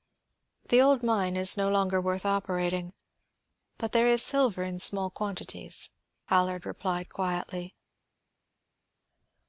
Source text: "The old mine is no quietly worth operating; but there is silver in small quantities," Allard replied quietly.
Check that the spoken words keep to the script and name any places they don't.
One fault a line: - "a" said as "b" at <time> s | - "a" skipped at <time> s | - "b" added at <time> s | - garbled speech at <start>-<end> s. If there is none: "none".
- "quietly" said as "longer" at 1.7 s